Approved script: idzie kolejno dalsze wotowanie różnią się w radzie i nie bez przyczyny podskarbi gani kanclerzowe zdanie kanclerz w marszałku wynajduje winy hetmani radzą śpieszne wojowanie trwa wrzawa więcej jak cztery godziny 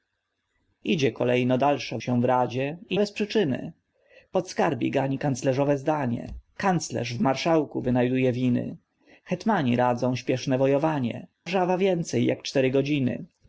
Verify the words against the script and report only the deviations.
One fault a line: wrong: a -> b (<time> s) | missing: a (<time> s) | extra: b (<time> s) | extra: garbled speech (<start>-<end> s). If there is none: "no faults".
missing: wotowanie różnią (2.0 s)
missing: nie (3.0 s)
missing: trwa (11.3 s)